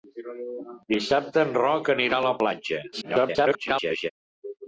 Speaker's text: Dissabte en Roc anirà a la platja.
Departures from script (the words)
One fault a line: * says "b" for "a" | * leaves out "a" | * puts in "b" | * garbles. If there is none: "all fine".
* garbles